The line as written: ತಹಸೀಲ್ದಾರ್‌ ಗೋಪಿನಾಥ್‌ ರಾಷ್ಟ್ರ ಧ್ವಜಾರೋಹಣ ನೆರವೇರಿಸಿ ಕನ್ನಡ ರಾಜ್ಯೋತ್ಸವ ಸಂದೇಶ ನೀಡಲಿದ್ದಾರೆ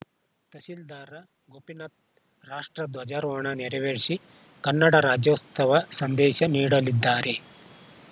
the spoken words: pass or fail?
pass